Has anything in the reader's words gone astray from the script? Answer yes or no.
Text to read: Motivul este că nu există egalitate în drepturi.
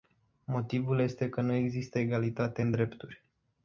no